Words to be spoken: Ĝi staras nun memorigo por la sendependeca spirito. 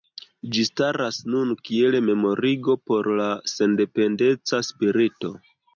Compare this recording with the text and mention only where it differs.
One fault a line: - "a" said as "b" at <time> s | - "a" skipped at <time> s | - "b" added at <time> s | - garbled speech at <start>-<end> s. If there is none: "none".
- "kiel" added at 1.7 s